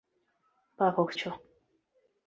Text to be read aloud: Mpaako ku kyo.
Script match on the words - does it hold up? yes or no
yes